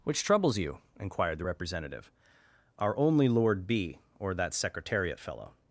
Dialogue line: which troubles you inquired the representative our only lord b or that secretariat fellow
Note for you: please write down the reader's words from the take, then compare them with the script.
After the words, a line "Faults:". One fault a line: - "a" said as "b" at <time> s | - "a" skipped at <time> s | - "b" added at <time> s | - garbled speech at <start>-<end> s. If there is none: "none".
which troubles you inquired the representative our only lord b or that secretariat fellow
Faults:
none